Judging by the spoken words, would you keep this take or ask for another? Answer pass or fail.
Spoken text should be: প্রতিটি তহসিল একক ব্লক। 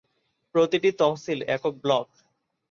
pass